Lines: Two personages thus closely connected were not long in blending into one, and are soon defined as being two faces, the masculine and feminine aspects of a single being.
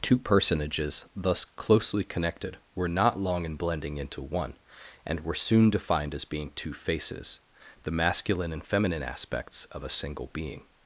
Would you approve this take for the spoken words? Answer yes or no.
no